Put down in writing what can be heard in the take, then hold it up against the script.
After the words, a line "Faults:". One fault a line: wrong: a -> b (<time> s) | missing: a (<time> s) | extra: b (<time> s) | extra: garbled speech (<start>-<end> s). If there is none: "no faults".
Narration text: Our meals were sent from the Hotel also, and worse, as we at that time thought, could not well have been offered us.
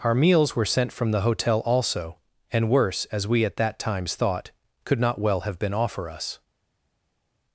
Our meals were sent from the Hotel also, and worse, as we at that times thought, could not well have been offer us.
Faults:
wrong: time -> times (3.8 s)
wrong: offered -> offer (5.7 s)